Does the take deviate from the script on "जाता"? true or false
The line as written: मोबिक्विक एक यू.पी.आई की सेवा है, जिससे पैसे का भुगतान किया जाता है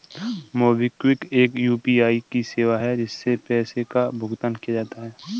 false